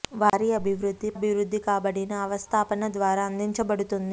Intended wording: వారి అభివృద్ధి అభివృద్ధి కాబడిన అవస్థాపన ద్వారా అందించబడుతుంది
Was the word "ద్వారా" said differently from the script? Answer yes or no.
no